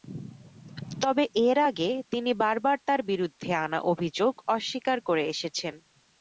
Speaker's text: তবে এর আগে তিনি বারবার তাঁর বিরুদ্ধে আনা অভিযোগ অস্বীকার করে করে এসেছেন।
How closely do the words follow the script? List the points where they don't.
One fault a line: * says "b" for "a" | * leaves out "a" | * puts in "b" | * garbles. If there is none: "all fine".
* leaves out "করে"